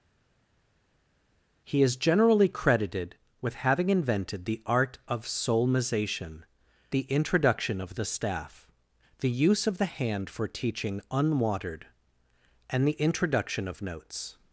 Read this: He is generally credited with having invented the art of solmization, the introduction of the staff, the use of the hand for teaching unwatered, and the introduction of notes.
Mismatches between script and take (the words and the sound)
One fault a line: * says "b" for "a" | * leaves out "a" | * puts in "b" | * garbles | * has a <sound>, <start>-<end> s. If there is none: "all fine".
all fine